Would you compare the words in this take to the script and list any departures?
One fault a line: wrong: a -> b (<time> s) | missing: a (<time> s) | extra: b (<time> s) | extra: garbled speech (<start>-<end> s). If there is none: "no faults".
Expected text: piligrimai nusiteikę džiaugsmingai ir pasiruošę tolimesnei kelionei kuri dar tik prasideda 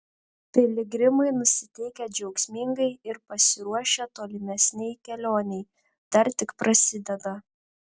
missing: kuri (5.6 s)